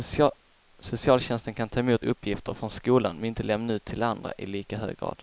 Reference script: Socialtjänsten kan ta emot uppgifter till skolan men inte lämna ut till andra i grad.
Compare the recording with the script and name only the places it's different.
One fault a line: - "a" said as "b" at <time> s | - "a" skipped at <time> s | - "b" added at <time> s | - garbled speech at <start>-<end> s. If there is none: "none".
- "till" said as "från" at 2.5 s
- "lika hög" added at 4.5 s